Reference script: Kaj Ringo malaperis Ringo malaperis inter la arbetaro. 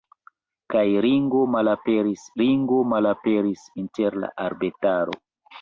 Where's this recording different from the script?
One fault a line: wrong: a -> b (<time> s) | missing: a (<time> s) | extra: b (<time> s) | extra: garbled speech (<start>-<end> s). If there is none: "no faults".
no faults